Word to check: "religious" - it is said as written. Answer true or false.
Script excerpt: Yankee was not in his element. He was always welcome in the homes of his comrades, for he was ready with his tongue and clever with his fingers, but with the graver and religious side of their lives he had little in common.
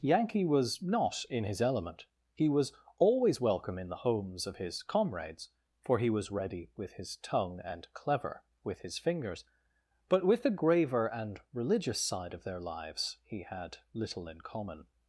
true